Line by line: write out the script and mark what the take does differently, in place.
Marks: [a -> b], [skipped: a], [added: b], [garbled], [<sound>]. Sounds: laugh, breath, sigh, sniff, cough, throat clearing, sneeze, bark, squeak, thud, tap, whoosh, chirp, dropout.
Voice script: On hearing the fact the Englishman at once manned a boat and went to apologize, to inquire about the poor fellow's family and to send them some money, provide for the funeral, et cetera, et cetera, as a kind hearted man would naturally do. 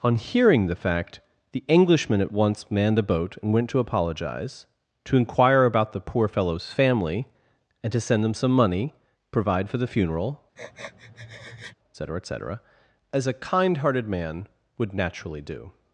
On hearing the fact the Englishman at once manned a boat and went to apologize, to inquire about the poor fellow's family and to send them some money, provide for the funeral, [sniff] et cetera, et cetera, as a kind hearted man would naturally do.